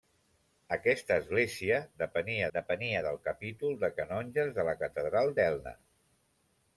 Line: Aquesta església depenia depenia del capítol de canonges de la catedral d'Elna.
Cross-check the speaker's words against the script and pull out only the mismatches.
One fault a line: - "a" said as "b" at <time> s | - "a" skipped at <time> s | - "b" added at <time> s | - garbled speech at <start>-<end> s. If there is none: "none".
none